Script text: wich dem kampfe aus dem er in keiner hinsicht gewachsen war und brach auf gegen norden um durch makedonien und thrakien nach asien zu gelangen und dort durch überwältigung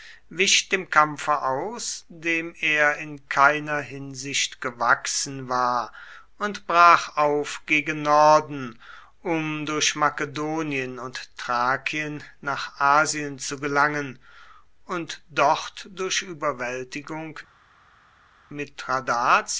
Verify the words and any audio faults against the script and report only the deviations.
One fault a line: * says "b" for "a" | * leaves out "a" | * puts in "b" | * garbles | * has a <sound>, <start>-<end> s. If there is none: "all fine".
all fine